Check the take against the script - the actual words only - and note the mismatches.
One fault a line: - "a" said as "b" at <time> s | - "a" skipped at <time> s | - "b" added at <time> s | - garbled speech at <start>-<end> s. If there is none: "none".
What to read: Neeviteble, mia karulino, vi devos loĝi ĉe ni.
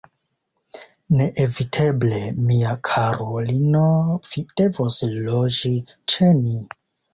none